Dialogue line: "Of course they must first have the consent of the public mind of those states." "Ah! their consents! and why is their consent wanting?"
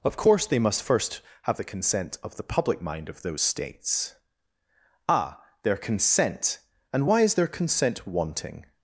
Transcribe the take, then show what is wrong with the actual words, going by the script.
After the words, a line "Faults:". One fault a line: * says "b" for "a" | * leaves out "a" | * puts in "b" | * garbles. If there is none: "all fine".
"Of course they must first have the consent of the public mind of those states." "Ah! their consent! and why is their consent wanting?"
Faults:
* says "consent" for "consents"